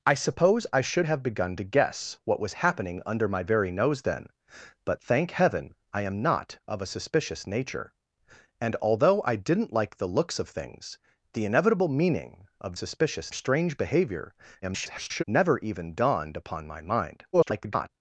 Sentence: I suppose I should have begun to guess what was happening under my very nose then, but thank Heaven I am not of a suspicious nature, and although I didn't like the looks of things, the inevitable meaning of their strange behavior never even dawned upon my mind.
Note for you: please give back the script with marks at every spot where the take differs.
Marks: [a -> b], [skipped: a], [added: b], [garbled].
I suppose I should have begun to guess what was happening under my very nose then, but thank Heaven I am not of a suspicious nature, and although I didn't like the looks of things, the inevitable meaning of [their -> suspicious] strange behavior [garbled] never even dawned upon my mind. [garbled]